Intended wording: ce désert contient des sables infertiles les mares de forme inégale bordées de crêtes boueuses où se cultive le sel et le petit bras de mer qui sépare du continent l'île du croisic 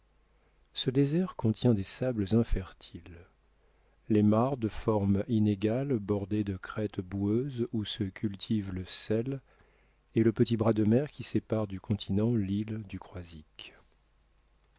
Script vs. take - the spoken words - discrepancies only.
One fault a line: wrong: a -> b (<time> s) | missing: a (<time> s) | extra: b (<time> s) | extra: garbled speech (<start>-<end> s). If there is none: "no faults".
no faults